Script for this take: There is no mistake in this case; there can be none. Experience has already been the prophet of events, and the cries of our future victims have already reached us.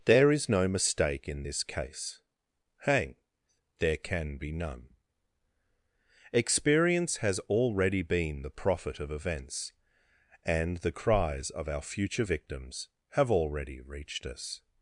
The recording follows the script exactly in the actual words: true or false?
false